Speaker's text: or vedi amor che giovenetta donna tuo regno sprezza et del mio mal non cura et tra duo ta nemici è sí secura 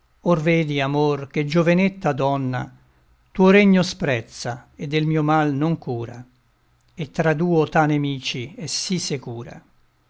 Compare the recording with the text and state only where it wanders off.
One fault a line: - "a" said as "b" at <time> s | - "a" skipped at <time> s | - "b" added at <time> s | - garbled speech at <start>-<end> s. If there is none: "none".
none